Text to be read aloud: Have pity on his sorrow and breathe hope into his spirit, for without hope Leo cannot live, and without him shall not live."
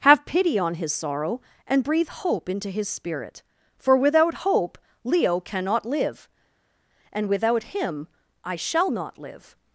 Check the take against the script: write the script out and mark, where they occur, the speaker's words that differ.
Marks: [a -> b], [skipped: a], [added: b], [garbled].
Have pity on his sorrow and breathe hope into his spirit, for without hope Leo cannot live, and without him [added: I] shall not live."